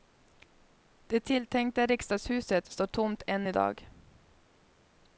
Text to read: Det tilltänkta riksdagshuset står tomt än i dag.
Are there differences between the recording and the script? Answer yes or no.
no